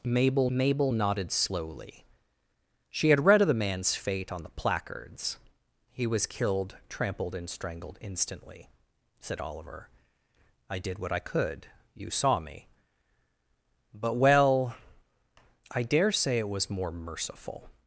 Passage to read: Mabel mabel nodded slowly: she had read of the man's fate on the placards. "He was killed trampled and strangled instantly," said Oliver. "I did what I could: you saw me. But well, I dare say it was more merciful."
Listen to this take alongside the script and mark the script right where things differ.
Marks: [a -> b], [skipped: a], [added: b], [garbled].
Mabel mabel nodded slowly: she had read of the man's fate on the placards. "He was killed trampled and strangled instantly," said Oliver. "I did what I could: you saw me. But well, I dare say it was more merciful."